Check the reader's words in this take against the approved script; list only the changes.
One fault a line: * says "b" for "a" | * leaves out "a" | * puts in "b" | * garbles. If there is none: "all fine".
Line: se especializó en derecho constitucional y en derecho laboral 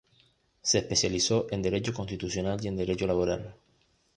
all fine